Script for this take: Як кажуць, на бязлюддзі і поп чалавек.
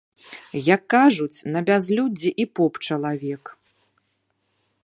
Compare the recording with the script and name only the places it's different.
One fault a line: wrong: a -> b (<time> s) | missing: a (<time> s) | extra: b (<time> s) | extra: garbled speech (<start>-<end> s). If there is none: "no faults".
no faults